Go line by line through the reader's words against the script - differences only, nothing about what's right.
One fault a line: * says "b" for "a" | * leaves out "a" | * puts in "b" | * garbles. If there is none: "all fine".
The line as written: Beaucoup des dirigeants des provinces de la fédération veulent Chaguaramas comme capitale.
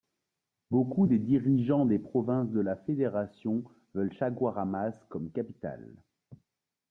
all fine